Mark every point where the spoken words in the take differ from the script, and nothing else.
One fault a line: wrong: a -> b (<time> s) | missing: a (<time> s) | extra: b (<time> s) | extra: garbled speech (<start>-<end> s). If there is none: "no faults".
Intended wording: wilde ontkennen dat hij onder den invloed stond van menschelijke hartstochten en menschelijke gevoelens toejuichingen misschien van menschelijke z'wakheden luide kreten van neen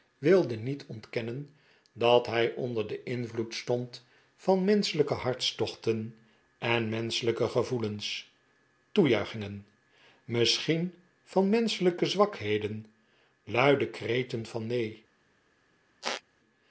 extra: niet (0.6 s)